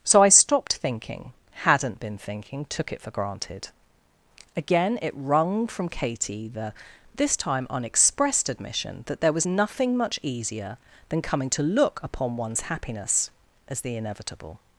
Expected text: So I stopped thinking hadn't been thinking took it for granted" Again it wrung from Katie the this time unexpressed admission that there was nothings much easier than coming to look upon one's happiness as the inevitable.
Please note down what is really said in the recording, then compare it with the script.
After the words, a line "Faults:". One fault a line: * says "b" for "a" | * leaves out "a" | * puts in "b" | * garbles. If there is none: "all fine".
So I stopped thinking hadn't been thinking took it for granted" Again it wrung from Katie the this time unexpressed admission that there was nothing much easier than coming to look upon one's happiness as the inevitable.
Faults:
* says "nothing" for "nothings"